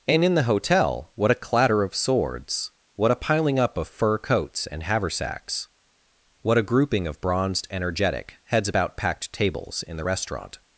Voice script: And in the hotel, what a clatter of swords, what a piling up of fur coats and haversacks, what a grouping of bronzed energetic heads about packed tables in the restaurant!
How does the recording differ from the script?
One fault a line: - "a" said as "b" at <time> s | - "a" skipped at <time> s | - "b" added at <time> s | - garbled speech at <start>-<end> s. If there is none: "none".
none